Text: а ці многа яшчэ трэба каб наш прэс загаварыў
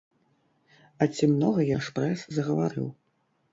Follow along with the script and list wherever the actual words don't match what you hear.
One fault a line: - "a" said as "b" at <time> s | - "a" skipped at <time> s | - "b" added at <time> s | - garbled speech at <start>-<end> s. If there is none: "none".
- "яшчэ трэба каб" skipped at 1.6 s